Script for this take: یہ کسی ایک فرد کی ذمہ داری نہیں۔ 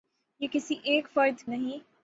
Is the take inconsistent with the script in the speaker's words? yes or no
yes